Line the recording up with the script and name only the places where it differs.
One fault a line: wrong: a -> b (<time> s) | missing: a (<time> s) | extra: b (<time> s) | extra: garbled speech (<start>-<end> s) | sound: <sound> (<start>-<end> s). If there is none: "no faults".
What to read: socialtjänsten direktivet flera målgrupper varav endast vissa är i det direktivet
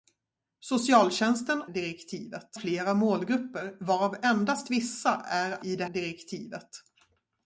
no faults